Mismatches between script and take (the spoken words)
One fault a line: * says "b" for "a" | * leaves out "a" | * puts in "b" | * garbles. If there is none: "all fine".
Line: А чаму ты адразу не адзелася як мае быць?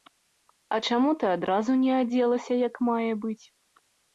all fine